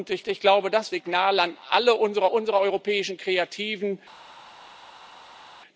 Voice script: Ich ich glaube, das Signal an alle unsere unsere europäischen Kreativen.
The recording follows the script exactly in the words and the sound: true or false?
true